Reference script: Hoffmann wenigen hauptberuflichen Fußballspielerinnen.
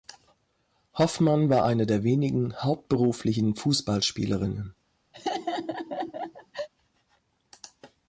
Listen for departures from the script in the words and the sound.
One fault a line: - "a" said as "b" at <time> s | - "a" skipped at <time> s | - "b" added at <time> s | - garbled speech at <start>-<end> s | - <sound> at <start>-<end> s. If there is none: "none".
- "war eine der" added at 1.5 s
- laugh at 5.1-6.7 s